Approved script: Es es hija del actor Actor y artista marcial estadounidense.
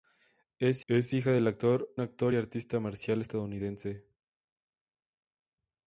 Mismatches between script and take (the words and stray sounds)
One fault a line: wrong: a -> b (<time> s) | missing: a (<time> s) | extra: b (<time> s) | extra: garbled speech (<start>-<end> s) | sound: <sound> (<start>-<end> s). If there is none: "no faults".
no faults